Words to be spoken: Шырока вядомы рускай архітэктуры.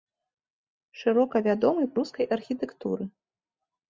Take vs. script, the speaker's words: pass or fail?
pass